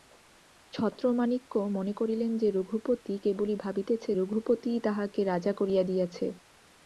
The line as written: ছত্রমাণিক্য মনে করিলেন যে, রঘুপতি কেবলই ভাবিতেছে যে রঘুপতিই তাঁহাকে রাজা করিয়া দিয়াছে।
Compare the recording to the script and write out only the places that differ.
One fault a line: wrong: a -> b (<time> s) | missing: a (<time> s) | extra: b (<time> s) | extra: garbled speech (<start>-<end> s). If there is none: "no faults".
missing: যে (4.1 s)